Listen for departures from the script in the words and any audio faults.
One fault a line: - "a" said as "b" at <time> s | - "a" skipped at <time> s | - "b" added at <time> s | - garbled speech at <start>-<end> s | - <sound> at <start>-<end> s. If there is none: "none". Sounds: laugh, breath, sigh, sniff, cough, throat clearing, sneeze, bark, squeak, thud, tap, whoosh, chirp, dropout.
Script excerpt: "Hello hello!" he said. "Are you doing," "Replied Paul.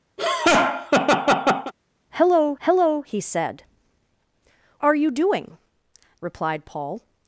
- laugh at 0.2-1.7 s